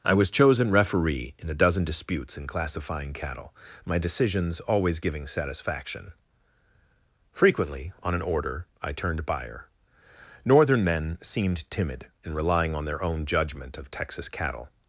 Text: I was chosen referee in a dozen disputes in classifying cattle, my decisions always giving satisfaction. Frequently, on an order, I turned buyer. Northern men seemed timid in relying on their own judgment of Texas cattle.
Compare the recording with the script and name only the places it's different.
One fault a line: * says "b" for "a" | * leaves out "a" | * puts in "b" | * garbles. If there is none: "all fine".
all fine